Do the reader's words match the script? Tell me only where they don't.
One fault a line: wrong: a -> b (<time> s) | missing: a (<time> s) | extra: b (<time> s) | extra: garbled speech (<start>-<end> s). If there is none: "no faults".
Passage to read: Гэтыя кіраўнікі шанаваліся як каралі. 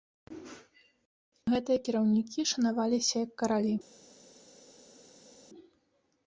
no faults